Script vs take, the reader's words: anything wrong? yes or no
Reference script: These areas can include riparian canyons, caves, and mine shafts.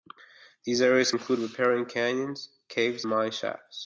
yes